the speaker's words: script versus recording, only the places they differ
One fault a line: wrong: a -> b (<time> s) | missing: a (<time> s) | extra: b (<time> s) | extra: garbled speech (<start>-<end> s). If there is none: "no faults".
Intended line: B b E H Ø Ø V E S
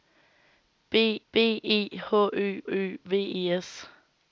no faults